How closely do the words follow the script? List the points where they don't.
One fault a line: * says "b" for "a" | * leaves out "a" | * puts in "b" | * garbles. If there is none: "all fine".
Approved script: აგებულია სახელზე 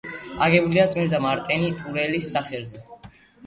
* puts in "წმინდა მარტინე ტურელის"